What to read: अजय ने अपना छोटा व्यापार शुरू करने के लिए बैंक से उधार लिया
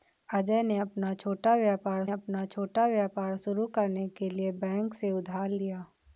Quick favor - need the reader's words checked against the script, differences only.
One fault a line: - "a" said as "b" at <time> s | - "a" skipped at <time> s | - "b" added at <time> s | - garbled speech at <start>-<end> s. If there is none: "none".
- "अपना छोटा व्यापार" added at 2.1 s